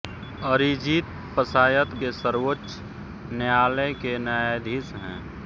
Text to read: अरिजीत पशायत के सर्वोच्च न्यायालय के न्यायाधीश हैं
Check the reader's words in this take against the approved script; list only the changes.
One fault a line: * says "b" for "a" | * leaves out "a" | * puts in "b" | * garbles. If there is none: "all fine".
all fine